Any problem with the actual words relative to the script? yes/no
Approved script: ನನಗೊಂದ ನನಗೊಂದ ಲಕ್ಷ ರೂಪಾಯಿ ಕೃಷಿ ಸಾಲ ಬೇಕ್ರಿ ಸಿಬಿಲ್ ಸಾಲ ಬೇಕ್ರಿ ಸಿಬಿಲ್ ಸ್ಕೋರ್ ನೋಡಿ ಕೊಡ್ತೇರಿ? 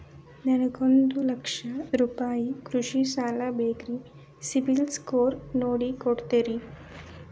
yes